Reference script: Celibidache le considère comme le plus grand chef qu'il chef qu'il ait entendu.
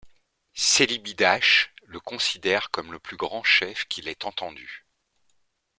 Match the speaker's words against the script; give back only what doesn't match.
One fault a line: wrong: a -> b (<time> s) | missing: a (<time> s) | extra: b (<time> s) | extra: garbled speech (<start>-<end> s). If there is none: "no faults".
missing: chef qu'il (4.1 s)